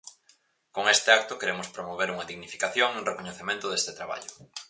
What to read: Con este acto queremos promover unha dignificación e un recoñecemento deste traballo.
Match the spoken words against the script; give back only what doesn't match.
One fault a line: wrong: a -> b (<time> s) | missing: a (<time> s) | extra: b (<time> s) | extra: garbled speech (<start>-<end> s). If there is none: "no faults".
no faults